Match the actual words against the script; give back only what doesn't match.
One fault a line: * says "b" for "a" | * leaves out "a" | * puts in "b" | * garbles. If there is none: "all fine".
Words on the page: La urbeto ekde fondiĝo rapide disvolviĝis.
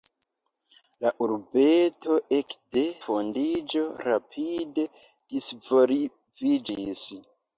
all fine